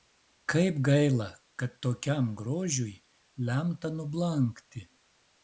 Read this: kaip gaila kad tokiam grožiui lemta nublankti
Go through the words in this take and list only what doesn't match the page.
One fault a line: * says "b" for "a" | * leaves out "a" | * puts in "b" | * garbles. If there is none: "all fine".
all fine